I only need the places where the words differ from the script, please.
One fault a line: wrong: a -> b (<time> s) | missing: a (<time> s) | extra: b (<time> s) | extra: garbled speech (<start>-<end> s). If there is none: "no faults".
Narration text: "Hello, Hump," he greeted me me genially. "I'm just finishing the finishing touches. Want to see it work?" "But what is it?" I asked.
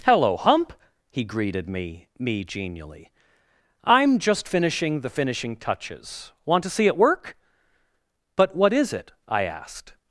no faults